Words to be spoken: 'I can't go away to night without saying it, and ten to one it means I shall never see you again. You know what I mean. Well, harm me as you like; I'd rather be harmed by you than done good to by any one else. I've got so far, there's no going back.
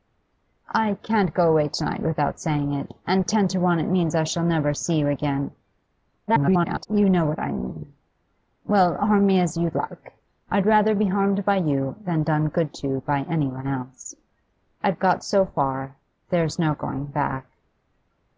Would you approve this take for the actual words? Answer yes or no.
no